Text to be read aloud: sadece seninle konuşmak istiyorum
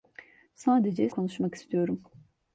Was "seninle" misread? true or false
true